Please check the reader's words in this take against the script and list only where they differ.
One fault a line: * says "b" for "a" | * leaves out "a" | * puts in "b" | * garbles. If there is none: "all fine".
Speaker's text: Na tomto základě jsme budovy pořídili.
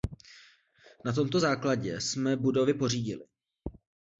all fine